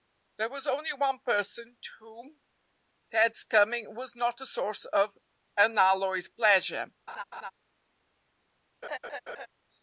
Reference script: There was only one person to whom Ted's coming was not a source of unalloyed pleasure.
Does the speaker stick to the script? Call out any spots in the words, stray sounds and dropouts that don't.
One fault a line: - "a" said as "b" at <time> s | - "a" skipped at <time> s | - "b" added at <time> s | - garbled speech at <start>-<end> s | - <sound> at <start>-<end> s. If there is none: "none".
- laugh at 7.1-7.5 s
- laugh at 8.8-9.5 s